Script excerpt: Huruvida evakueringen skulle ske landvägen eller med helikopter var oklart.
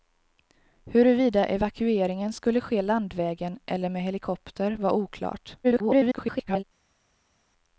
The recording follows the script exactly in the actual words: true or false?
false